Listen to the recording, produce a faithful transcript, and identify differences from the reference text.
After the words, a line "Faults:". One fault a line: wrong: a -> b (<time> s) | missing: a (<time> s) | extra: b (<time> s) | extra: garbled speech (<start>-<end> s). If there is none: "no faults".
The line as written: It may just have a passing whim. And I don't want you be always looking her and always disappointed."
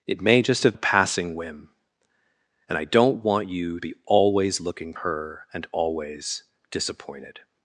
It may just have a passing whim. And I don't want you be always looking her and always disappointed."
Faults:
no faults